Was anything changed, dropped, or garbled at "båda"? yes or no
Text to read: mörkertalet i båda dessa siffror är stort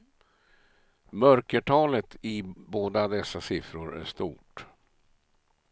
no